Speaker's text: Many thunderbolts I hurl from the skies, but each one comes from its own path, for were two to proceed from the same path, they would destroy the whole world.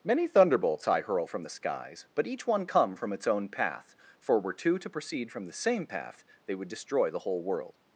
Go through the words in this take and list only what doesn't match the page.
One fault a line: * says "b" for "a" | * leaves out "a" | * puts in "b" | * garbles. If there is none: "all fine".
* says "come" for "comes"